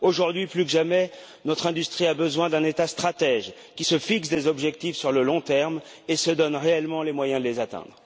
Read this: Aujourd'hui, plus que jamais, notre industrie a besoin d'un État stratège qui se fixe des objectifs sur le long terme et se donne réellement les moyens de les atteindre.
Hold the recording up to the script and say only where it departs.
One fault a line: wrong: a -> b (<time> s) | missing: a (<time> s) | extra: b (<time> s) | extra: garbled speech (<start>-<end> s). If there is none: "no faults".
no faults